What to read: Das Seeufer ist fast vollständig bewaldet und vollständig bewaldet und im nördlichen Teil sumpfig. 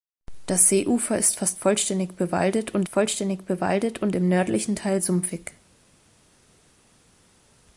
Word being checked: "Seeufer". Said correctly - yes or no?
yes